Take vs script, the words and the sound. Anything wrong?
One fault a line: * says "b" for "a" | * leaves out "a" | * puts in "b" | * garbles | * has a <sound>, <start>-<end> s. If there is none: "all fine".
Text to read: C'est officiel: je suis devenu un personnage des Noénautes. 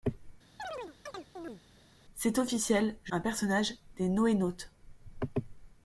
* has a chirp, 0.6-1.6 s
* leaves out "suis devenu"